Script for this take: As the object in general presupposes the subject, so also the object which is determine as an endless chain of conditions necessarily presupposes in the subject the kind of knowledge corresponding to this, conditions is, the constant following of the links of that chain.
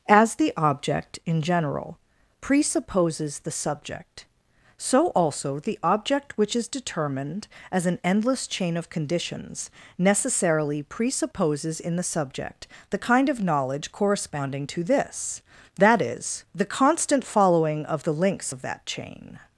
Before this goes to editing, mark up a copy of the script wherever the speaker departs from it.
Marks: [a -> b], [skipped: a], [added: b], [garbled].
As the object in general presupposes the subject, so also the object which is [determine -> determined] as an endless chain of conditions necessarily presupposes in the subject the kind of knowledge corresponding to this, [conditions -> that] is, the constant following of the links of that chain.